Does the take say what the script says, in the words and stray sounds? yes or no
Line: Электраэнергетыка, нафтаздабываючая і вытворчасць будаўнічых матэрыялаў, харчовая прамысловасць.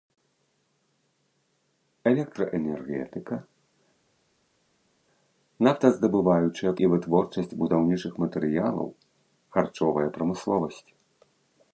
yes